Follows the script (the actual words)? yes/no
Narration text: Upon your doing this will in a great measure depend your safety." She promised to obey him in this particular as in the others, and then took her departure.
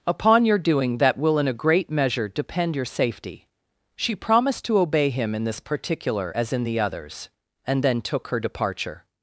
no